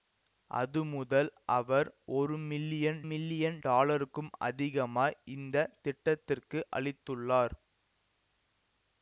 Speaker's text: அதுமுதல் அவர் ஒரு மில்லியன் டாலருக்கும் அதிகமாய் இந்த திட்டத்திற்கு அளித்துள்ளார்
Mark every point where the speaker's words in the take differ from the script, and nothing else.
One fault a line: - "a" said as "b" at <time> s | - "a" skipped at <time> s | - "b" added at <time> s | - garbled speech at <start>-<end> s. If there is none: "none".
- "மில்லியன்" added at 3.1 s